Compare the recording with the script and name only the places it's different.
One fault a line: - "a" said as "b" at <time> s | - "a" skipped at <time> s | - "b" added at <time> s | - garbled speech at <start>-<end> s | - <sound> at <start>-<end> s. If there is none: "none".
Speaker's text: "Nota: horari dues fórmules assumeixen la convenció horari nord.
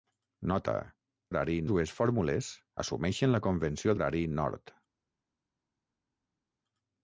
none